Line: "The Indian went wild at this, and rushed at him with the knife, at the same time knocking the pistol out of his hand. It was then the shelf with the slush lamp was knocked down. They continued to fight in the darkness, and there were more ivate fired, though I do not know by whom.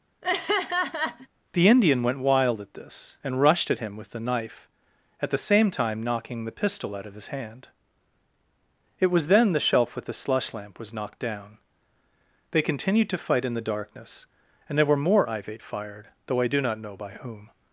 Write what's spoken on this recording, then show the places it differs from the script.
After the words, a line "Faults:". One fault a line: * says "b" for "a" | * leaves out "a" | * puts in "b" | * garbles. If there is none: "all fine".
"The Indian went wild at this, and rushed at him with the knife, at the same time knocking the pistol out of his hand. It was then the shelf with the slush lamp was knocked down. They continued to fight in the darkness, and there were more ivate fired, though I do not know by whom.
Faults:
all fine